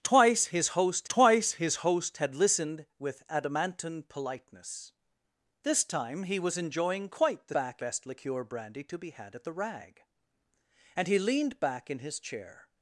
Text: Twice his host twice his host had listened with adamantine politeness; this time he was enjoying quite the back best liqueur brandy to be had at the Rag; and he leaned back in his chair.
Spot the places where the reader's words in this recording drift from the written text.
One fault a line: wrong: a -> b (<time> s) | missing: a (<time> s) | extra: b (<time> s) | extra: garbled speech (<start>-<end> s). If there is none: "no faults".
no faults